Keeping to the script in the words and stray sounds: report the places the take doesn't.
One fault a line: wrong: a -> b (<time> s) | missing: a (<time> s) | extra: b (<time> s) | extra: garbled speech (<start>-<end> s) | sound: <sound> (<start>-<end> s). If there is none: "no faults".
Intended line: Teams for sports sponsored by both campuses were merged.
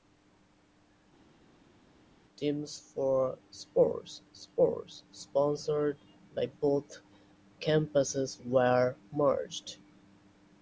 extra: sports (4.3 s)